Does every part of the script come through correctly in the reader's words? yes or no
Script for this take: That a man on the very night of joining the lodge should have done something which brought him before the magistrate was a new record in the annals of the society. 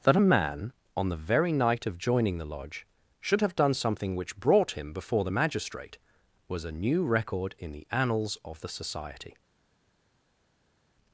yes